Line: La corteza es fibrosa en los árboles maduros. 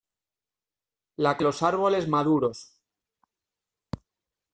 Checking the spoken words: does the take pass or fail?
fail